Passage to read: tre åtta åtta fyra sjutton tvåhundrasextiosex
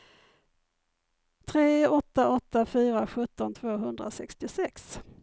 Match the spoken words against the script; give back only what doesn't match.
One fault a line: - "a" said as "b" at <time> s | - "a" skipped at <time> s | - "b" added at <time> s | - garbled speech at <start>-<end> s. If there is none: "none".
none